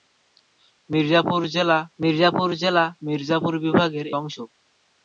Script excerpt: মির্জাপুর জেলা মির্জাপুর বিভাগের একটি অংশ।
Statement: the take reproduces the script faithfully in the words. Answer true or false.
false